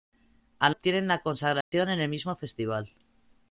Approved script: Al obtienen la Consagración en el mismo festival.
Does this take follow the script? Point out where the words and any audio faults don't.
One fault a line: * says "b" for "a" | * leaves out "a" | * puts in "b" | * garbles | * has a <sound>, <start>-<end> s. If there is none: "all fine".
* has a dropout, 1.6-1.7 s